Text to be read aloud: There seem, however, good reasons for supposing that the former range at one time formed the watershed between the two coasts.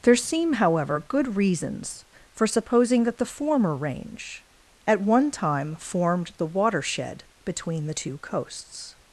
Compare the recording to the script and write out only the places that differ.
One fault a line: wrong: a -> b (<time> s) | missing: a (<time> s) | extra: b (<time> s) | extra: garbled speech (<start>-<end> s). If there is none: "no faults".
no faults